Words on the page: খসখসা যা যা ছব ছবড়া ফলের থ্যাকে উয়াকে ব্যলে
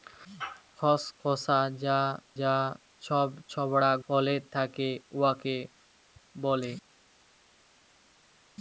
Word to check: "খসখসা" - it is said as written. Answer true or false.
true